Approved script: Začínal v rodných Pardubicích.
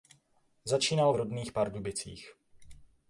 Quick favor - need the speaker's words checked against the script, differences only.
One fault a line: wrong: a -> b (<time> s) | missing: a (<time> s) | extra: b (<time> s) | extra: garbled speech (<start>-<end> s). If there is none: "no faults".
no faults